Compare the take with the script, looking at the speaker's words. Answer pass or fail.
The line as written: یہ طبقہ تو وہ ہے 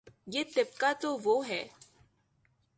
pass